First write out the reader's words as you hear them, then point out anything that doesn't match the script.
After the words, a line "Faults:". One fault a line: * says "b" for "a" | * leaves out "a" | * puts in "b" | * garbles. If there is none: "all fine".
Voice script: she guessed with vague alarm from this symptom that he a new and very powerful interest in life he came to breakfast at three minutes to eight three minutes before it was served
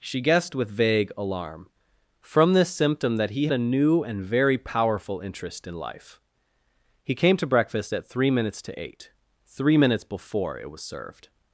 she guessed with vague alarm from this symptom that he a new and very powerful interest in life he came to breakfast at three minutes to eight three minutes before it was served
Faults:
all fine